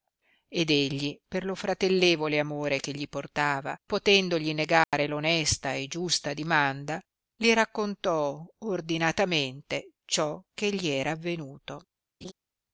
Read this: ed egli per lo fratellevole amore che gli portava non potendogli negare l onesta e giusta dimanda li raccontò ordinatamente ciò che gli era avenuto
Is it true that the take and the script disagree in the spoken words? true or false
true